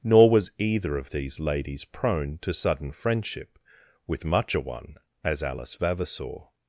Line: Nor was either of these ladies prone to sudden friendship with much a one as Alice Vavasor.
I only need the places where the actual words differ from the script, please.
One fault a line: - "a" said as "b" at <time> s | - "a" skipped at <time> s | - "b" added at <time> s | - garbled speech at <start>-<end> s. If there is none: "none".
none